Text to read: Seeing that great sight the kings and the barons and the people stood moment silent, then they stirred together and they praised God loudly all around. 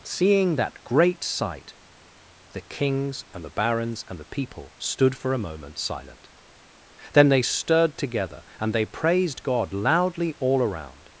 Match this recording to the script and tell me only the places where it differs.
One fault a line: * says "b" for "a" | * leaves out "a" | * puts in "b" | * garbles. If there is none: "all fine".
* puts in "for a"